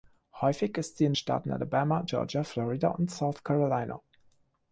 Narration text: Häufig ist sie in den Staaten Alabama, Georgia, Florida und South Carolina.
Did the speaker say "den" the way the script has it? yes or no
no